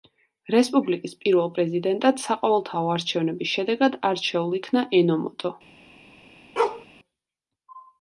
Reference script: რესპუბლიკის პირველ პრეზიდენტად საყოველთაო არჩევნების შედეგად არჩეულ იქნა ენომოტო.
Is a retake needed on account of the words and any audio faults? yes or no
yes